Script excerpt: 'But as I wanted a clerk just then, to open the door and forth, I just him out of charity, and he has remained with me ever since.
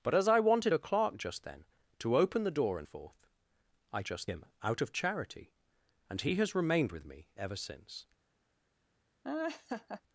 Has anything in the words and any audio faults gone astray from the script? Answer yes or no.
yes